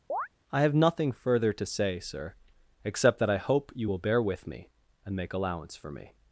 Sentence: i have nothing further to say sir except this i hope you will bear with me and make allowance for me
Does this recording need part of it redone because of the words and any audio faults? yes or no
yes